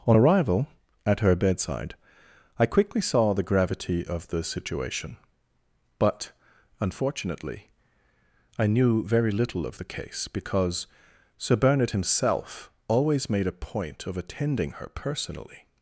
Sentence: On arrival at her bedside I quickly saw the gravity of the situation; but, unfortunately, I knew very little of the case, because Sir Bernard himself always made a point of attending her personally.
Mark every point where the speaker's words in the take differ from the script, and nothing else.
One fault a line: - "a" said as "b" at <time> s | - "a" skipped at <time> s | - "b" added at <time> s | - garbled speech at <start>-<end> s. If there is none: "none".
none